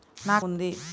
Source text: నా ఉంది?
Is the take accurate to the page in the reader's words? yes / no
yes